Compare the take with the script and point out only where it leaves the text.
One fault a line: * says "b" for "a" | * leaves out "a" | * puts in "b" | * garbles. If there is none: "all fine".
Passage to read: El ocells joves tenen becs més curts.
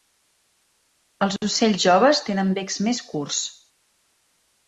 * says "Els" for "El"